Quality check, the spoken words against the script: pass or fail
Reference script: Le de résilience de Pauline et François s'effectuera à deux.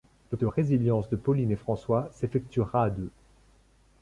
pass